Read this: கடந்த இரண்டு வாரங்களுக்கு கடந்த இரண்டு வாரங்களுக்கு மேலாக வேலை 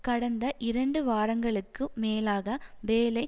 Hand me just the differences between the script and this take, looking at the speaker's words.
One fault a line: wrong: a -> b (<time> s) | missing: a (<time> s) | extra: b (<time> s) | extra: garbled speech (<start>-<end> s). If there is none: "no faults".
missing: கடந்த இரண்டு வாரங்களுக்கு (1.8 s)